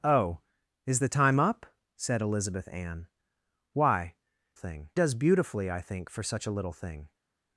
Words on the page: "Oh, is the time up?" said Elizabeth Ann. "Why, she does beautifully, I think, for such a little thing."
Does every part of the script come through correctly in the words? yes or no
no